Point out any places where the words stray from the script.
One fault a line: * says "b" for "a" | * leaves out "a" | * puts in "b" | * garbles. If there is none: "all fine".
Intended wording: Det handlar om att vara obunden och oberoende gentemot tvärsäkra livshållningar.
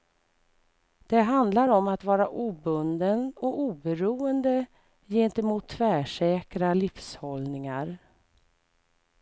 all fine